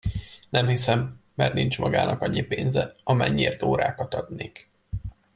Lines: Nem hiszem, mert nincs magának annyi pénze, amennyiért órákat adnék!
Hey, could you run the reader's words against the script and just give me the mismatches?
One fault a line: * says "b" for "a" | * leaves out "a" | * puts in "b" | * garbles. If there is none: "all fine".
all fine